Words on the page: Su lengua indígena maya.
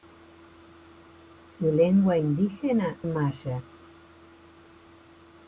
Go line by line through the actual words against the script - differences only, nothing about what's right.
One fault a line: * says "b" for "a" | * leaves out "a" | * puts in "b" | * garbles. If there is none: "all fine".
all fine